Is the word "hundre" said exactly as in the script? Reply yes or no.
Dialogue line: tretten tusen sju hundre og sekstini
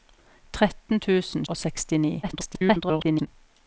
no